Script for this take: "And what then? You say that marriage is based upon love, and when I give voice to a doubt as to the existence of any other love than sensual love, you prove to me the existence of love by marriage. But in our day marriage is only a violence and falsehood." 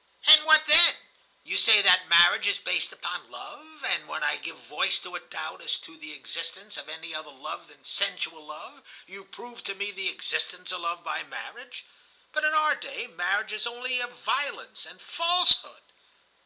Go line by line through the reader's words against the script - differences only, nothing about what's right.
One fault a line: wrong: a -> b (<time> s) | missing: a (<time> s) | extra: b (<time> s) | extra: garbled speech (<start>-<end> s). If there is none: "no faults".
no faults